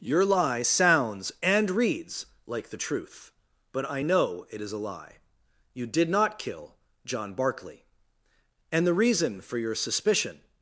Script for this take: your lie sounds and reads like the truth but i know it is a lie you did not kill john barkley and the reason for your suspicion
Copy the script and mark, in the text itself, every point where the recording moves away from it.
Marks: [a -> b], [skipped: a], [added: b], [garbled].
your lie sounds and reads like the truth but i know it is a lie you did not kill john barkley and the reason for your suspicion